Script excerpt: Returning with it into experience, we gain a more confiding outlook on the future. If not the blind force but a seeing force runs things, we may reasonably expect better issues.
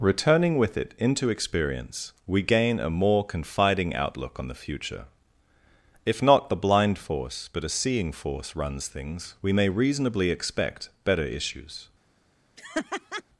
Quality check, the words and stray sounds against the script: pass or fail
fail